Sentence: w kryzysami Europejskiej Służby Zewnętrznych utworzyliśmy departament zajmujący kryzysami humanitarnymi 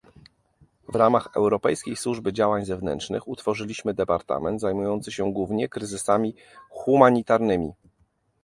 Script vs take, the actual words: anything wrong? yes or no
yes